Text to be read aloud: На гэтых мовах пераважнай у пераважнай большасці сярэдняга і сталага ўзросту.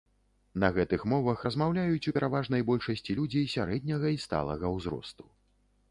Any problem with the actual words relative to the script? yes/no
yes